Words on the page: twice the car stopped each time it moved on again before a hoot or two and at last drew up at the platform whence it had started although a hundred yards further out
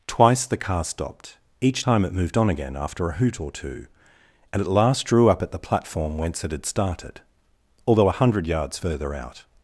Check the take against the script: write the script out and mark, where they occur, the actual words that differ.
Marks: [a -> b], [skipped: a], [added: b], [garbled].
twice the car stopped each time it moved on again [before -> after] a hoot or two and at last drew up at the platform whence it had started although a hundred yards further out